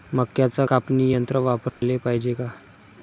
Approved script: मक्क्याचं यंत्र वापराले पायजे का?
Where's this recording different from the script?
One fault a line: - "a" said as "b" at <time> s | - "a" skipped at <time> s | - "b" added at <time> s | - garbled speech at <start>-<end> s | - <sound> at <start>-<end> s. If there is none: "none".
- "कापनी" added at 0.6 s
- dropout at 1.7-1.8 s